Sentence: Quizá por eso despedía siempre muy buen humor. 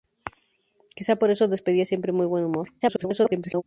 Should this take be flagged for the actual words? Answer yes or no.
yes